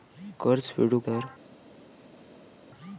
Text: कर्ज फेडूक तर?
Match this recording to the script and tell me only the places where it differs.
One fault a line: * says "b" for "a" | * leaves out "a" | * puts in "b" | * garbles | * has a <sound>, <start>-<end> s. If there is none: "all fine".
all fine